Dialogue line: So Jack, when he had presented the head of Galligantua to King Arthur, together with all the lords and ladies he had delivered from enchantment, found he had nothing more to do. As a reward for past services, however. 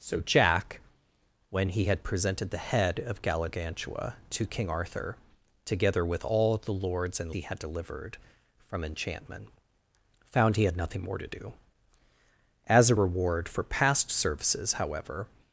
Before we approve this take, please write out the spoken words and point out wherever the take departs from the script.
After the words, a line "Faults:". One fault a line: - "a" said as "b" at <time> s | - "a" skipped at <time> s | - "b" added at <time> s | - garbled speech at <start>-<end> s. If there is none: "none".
So Jack, when he had presented the head of Galligantua to King Arthur, together with all the lords and he had delivered from enchantment, found he had nothing more to do. As a reward for past services, however.
Faults:
- "ladies" skipped at 7.3 s